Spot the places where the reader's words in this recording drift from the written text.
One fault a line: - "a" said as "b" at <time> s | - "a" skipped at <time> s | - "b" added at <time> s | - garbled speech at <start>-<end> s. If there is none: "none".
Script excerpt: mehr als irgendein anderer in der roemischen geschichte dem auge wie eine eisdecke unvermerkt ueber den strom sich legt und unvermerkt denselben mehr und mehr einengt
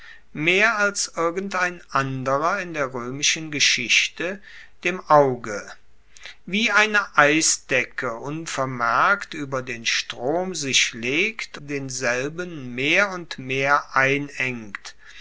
- "und unvermerkt" skipped at 11.6 s